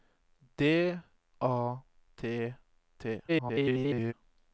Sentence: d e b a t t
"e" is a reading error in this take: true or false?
true